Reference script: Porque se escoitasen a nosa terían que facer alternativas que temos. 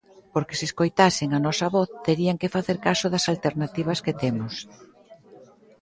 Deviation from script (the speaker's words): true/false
true